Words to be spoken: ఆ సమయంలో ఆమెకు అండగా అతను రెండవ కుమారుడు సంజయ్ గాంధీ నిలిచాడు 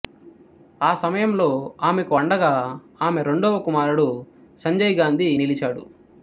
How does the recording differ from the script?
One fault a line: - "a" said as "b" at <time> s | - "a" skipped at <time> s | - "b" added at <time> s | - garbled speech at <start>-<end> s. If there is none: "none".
- "అతను" said as "ఆమె" at 3.0 s